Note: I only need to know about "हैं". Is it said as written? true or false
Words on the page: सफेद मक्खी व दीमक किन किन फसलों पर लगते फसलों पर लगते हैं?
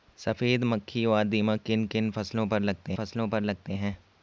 true